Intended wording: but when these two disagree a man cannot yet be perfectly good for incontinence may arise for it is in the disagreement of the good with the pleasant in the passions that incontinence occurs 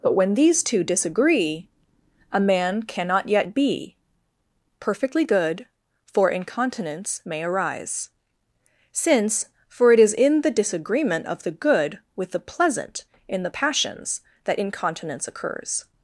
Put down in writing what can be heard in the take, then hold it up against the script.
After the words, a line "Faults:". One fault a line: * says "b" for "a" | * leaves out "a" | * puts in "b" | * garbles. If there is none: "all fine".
but when these two disagree a man cannot yet be perfectly good for incontinence may arise since for it is in the disagreement of the good with the pleasant in the passions that incontinence occurs
Faults:
* puts in "since"